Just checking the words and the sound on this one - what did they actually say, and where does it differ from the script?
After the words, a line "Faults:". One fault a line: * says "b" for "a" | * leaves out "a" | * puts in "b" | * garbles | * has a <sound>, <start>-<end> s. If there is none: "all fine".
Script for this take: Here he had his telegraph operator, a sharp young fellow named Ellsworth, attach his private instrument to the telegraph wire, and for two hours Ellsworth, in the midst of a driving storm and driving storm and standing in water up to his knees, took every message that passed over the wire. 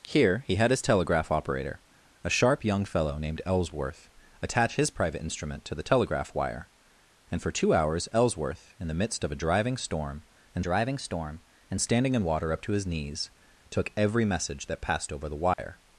Here he had his telegraph operator, a sharp young fellow named Ellsworth, attach his private instrument to the telegraph wire, and for two hours Ellsworth, in the midst of a driving storm and driving storm and standing in water up to his knees, took every message that passed over the wire.
Faults:
* has a dropout, 15.5-15.6 s